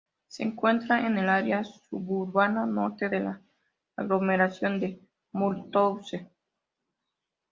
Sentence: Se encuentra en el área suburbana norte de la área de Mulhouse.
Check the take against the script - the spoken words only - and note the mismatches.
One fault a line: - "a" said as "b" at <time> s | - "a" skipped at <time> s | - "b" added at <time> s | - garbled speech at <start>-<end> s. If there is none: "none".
- "área" said as "aglomeración" at 4.0 s